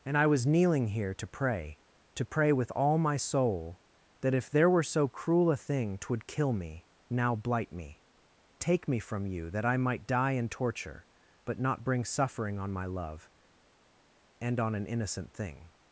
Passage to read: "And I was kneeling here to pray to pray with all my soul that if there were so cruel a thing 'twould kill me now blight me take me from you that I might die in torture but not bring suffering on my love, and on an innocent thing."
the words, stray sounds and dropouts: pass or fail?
pass